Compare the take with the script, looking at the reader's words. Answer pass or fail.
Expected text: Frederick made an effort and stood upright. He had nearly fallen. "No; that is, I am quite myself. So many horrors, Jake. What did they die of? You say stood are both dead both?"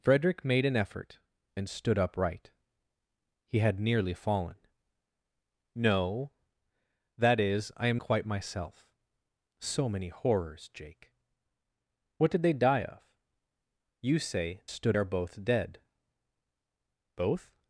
pass